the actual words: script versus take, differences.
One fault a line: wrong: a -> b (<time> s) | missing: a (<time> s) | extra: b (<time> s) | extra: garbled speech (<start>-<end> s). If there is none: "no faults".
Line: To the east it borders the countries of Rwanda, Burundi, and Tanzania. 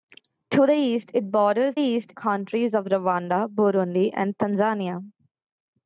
wrong: the -> east (1.7 s)